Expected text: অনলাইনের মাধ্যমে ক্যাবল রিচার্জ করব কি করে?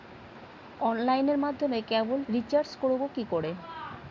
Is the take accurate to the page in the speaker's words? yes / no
yes